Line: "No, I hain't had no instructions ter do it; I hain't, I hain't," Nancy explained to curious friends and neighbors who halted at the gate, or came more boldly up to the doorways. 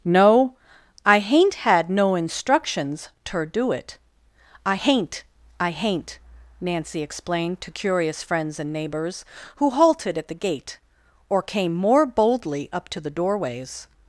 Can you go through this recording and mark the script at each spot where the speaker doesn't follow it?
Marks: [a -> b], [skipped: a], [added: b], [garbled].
"No, I hain't had no instructions ter do it; I hain't, I hain't," Nancy explained to curious friends and neighbors who halted at the gate, or came more boldly up to the doorways.